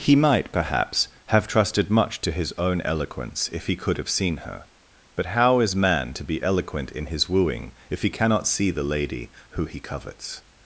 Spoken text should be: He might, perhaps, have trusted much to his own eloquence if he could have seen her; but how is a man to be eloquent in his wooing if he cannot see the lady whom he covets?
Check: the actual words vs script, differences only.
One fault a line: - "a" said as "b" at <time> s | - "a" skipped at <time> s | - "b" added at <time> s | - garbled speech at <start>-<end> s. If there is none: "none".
- "a" skipped at 5.8 s
- "whom" said as "who" at 9.5 s